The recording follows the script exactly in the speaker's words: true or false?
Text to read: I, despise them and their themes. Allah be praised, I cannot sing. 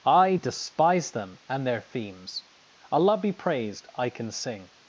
false